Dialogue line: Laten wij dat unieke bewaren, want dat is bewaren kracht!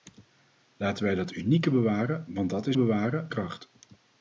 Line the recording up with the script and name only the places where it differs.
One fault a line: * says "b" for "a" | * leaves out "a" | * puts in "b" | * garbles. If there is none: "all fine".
all fine